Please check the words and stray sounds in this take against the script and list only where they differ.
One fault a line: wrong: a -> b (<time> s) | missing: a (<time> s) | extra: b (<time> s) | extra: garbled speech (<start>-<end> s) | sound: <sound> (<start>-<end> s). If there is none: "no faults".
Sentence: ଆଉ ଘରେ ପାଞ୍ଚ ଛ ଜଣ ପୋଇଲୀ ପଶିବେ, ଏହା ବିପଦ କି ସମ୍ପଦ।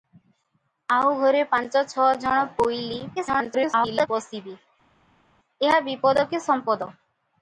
extra: garbled speech (3.2-4.1 s)